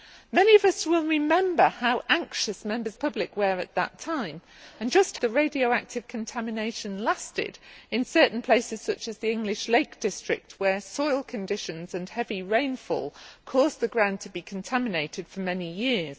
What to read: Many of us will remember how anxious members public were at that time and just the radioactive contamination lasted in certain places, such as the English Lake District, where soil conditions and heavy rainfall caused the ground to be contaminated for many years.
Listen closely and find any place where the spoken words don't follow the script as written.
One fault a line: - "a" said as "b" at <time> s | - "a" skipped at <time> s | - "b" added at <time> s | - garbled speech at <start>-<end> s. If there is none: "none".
none